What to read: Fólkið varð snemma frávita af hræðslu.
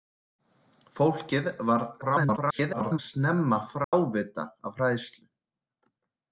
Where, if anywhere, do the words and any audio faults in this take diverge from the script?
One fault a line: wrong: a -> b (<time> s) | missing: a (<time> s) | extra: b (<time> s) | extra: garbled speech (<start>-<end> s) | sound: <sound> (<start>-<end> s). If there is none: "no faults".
extra: garbled speech (2.0-3.0 s)
sound: dropout (3.8-3.9 s)